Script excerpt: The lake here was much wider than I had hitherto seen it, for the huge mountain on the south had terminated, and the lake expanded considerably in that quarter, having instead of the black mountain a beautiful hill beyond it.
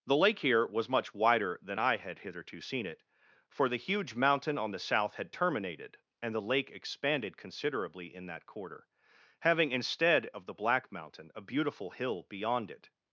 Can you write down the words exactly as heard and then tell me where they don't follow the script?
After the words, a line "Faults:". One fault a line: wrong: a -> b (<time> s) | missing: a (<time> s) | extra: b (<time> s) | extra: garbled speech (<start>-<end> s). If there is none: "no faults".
The lake here was much wider than I had hitherto seen it, for the huge mountain on the south had terminated, and the lake expanded considerably in that quarter, having instead of the black mountain a beautiful hill beyond it.
Faults:
no faults